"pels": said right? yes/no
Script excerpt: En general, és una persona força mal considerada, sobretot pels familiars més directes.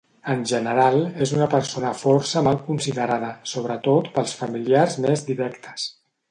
yes